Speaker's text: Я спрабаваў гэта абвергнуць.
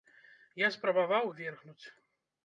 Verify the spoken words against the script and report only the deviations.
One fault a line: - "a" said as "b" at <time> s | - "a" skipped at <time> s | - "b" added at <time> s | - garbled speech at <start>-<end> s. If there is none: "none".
- "гэта" skipped at 1.3 s